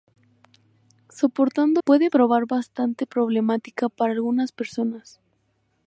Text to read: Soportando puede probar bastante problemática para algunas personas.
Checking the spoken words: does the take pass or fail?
pass